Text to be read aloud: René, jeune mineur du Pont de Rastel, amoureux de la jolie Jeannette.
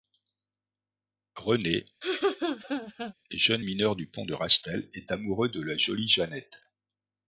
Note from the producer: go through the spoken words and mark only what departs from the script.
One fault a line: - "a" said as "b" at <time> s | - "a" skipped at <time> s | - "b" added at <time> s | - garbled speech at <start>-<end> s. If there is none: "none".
- "est" added at 4.9 s